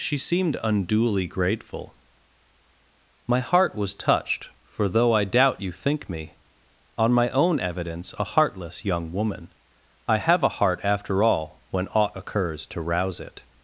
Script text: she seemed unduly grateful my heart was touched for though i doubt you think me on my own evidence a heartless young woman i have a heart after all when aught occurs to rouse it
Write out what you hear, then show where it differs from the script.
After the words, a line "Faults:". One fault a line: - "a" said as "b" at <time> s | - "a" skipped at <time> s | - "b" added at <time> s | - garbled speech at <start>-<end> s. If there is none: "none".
she seemed unduly grateful my heart was touched for though i doubt you think me on my own evidence a heartless young woman i have a heart after all when aught occurs to rouse it
Faults:
none